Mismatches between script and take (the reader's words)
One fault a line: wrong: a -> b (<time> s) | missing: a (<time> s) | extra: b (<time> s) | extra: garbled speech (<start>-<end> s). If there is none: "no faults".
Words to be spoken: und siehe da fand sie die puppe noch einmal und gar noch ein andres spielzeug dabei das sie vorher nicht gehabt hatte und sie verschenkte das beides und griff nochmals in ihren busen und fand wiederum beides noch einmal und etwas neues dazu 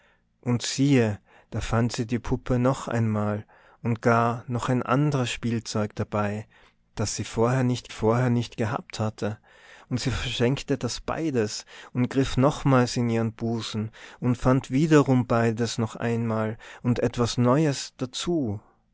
extra: vorher nicht (7.9 s)